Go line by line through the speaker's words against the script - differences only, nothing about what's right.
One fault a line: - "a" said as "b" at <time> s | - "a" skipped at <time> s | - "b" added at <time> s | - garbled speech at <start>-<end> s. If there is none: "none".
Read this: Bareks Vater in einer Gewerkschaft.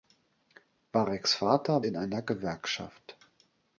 none